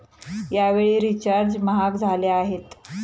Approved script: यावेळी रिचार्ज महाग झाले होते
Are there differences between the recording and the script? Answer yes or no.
yes